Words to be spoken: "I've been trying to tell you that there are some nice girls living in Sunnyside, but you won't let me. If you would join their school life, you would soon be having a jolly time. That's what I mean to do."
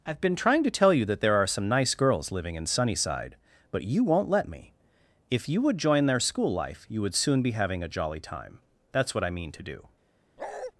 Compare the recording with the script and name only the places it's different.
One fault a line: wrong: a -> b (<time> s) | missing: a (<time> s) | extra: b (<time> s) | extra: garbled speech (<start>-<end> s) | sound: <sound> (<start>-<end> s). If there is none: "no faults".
sound: bark (10.4-10.7 s)